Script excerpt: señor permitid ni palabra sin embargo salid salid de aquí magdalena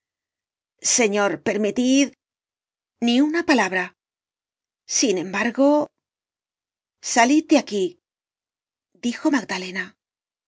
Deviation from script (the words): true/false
true